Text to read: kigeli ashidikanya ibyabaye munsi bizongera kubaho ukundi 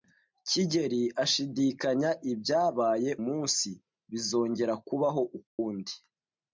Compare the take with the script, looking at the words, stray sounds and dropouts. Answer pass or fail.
fail